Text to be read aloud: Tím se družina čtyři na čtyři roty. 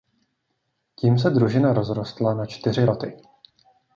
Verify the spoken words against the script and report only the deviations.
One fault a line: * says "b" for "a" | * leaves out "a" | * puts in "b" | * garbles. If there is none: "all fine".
* says "rozrostla" for "čtyři"